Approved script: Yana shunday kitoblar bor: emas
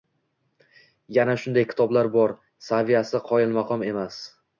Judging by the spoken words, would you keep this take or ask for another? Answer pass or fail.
fail